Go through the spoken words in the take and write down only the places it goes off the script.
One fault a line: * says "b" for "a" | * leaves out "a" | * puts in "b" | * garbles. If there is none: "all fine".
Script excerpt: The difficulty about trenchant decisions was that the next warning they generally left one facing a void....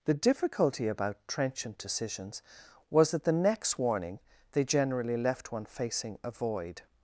all fine